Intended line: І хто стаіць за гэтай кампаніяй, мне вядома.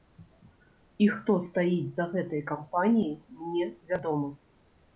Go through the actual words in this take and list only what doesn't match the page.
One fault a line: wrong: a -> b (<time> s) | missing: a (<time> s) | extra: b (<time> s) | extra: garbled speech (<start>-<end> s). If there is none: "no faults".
no faults